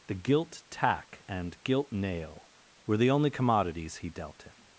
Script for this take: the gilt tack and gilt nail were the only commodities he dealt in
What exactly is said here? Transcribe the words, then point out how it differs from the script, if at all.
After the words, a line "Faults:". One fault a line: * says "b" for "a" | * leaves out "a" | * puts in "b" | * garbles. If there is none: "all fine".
the gilt tack and gilt nail were the only commodities he dealt in
Faults:
all fine